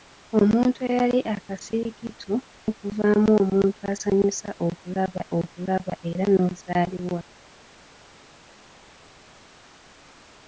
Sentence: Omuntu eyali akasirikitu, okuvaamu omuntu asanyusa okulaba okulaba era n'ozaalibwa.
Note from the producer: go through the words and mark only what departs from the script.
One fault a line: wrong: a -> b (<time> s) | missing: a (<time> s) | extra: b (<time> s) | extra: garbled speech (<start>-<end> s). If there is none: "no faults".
no faults